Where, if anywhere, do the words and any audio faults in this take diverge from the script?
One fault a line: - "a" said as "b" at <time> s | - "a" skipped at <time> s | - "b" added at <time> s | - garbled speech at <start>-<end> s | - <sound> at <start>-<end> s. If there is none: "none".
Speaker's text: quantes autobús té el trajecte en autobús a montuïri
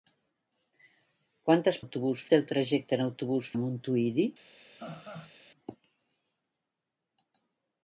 - laugh at 4.8-5.3 s